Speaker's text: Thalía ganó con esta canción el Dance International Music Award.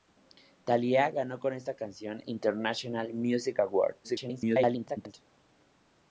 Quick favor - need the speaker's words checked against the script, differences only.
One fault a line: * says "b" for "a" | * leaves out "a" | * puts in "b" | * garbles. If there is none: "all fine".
* leaves out "el Dance"
* garbles